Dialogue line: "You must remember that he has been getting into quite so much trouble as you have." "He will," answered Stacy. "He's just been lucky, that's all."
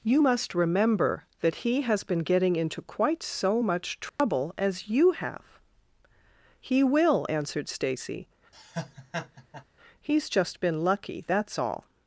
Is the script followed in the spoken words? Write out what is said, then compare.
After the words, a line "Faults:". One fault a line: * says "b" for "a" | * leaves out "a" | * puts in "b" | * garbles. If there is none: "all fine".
"You must remember that he has been getting into quite so much trouble as you have." "He will," answered Stacy. "He's just been lucky, that's all."
Faults:
all fine